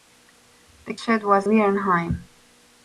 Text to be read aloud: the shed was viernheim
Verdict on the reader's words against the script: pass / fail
pass